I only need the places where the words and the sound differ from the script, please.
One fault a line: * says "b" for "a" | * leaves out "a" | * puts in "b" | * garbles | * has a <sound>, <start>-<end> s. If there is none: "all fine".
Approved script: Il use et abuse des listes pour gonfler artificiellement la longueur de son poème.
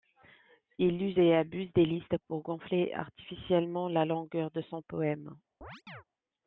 * has a chirp, 5.6-6.0 s